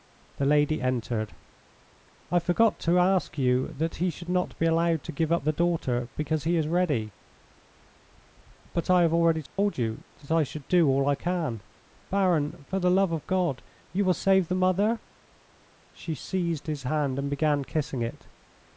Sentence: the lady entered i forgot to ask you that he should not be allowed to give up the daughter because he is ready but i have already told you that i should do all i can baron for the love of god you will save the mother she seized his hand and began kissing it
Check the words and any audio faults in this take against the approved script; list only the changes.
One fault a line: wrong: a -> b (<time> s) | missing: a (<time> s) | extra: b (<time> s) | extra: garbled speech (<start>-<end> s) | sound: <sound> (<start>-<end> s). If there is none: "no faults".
sound: dropout (9.5-9.6 s)